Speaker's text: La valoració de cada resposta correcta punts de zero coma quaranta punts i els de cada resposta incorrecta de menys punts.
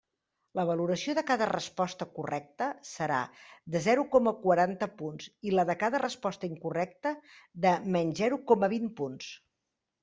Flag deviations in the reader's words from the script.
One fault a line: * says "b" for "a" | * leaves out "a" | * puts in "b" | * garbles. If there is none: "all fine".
* says "serà" for "punts"
* says "la" for "els"
* puts in "zero coma vint"